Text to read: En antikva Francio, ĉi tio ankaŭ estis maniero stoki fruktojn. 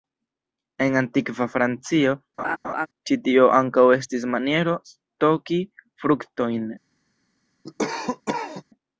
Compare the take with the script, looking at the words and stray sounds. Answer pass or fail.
fail